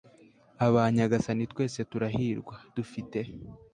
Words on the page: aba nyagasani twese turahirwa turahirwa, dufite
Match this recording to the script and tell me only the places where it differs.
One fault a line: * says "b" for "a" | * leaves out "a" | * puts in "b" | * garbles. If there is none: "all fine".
* leaves out "turahirwa"